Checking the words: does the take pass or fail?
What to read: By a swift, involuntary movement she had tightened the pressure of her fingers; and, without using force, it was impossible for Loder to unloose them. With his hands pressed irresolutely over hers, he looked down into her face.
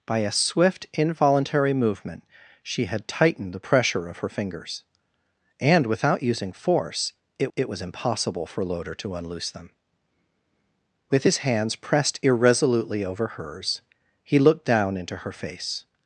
fail